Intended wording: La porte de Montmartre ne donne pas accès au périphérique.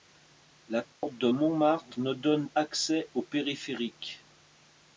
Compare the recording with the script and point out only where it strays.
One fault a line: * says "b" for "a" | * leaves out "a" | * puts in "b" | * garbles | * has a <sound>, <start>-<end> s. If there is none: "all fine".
* has a dropout, 0.9-1.0 s
* leaves out "pas"